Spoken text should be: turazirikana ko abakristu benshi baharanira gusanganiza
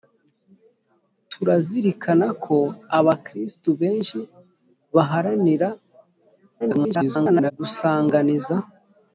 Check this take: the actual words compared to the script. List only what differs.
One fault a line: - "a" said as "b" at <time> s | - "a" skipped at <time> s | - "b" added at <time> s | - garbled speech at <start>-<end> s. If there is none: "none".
- garbled speech at 6.6-7.5 s